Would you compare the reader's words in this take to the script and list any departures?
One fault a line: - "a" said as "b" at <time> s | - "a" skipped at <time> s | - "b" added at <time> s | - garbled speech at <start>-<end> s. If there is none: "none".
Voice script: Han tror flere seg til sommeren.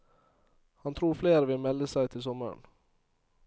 - "vil melde" added at 1.5 s